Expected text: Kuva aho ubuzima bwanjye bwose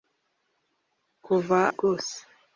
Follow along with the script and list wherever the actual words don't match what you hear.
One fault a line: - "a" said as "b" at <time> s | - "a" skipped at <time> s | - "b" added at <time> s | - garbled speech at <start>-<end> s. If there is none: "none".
- "aho ubuzima bwanjye" skipped at 1.6 s